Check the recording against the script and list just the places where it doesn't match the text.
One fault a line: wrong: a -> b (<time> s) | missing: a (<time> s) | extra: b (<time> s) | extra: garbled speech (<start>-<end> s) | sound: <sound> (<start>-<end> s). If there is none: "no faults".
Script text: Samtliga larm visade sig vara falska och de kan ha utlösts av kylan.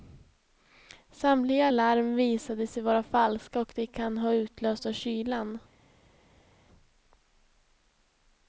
no faults